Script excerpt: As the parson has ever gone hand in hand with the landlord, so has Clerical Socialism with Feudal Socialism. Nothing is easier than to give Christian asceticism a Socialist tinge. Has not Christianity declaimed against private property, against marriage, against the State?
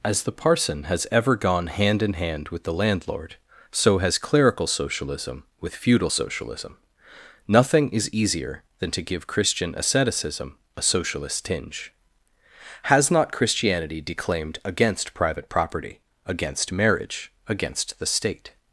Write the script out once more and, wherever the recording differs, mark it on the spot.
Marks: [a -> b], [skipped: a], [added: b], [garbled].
As the parson has ever gone hand in hand with the landlord, so has Clerical Socialism with Feudal Socialism. Nothing is easier than to give Christian asceticism a Socialist tinge. Has not Christianity declaimed against private property, against marriage, against the State?